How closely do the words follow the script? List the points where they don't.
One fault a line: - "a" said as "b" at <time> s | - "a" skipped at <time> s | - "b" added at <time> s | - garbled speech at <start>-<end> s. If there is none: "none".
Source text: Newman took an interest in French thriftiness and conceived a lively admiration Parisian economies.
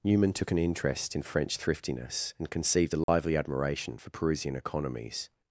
- "for" added at 3.9 s